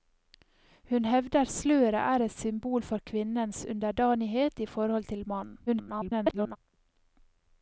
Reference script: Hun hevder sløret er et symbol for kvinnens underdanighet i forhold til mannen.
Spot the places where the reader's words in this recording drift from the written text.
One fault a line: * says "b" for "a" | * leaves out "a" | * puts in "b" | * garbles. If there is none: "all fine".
* garbles